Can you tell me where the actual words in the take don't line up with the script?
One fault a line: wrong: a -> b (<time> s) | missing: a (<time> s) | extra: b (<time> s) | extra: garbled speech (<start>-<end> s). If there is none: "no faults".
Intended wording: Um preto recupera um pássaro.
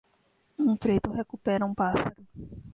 no faults